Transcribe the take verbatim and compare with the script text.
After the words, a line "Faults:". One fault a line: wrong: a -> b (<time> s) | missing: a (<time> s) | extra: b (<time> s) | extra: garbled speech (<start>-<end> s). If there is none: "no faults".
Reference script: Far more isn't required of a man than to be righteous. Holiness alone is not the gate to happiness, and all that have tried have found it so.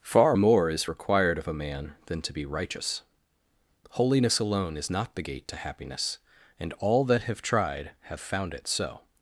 Far more is required of a man than to be righteous. Holiness alone is not the gate to happiness, and all that have tried have found it so.
Faults:
wrong: isn't -> is (0.7 s)